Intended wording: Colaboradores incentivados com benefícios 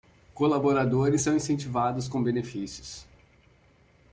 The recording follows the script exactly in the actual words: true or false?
false